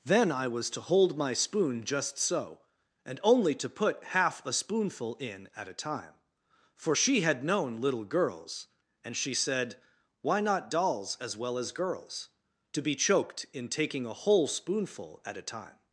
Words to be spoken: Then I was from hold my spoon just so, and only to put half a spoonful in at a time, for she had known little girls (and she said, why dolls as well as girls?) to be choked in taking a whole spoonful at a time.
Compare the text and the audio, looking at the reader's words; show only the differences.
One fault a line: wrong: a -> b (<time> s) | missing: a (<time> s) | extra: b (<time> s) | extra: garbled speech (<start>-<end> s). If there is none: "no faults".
wrong: from -> to (0.7 s)
extra: not (10.4 s)